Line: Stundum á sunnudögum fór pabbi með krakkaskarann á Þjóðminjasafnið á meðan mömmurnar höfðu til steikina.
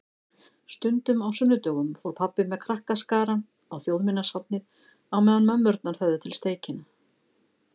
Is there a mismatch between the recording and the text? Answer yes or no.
no